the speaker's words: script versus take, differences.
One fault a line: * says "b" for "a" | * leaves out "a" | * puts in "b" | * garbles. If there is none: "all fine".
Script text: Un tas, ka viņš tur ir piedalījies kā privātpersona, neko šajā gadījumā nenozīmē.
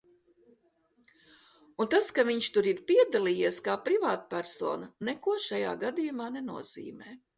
all fine